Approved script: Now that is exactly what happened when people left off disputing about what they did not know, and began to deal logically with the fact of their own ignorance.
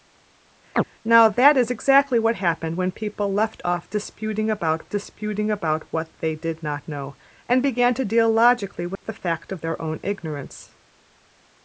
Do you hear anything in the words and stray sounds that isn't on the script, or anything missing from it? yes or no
yes